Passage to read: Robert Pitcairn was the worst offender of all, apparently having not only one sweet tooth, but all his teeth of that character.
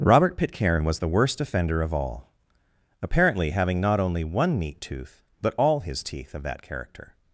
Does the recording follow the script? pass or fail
fail